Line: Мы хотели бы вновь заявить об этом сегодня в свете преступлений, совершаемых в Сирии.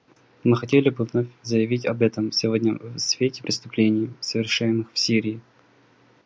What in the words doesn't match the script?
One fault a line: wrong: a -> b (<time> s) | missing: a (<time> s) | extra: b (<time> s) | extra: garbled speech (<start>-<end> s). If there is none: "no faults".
no faults